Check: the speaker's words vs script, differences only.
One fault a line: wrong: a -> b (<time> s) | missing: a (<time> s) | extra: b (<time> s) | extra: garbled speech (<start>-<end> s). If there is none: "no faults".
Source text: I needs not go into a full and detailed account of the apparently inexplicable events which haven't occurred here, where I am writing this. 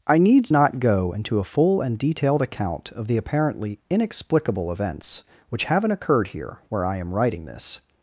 no faults